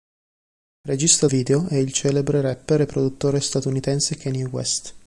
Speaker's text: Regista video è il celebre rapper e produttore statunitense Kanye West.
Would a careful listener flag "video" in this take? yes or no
no